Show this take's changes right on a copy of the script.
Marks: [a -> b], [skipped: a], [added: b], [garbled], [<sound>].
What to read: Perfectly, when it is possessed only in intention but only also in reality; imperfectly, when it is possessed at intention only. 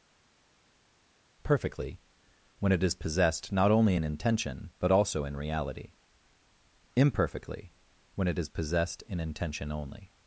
Perfectly, when it is possessed [added: not] only in intention but [skipped: only] also in reality; imperfectly, when it is possessed [at -> in] intention only.